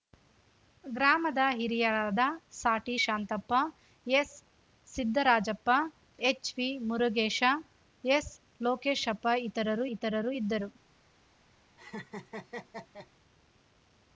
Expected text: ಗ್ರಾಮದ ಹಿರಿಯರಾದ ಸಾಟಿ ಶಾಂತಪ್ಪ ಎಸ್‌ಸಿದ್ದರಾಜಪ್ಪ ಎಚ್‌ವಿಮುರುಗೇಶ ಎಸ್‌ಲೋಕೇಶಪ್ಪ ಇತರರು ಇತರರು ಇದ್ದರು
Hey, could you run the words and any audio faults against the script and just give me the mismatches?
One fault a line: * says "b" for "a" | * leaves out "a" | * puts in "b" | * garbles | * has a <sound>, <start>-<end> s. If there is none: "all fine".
* has a laugh, 11.8-13.1 s